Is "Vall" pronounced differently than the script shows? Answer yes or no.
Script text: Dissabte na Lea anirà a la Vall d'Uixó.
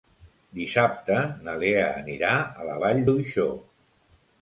no